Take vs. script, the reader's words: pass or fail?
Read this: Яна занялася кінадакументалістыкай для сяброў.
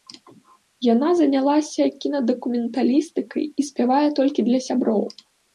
fail